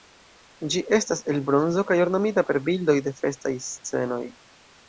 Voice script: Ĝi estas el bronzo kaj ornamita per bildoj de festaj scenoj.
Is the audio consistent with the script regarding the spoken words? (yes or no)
yes